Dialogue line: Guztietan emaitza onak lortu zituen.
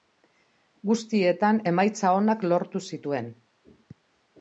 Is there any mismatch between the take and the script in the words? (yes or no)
no